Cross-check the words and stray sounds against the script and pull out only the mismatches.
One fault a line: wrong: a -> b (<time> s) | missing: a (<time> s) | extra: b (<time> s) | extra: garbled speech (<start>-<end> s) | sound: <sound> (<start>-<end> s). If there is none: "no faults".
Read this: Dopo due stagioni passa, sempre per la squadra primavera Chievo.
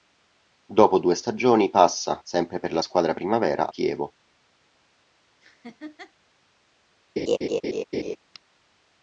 sound: laugh (5.4-6.1 s)
sound: laugh (7.2-8.2 s)